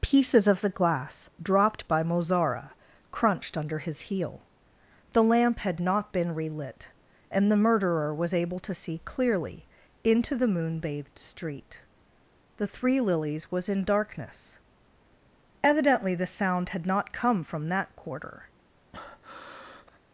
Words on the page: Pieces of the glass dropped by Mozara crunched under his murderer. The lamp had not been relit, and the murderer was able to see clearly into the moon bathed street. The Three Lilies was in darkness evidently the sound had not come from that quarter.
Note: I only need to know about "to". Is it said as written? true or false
true